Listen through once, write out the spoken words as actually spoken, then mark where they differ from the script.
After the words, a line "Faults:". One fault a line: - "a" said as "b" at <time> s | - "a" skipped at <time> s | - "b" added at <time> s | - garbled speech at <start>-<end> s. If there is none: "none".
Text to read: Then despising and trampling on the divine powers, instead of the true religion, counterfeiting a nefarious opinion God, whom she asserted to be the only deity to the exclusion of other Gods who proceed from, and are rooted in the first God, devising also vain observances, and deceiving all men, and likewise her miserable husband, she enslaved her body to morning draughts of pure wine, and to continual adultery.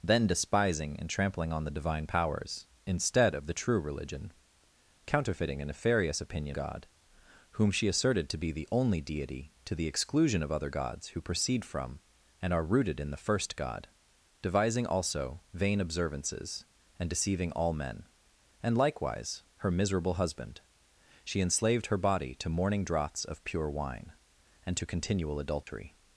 Then despising and trampling on the divine powers, instead of the true religion, counterfeiting a nefarious opinion God, whom she asserted to be the only deity to the exclusion of other Gods who proceed from, and are rooted in the first God, devising also vain observances, and deceiving all men, and likewise her miserable husband, she enslaved her body to morning draughts of pure wine, and to continual adultery.
Faults:
none